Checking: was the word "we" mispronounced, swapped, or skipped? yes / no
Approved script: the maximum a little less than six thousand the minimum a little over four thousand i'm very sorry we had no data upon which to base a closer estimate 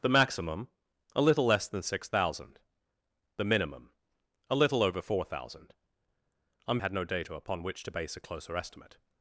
yes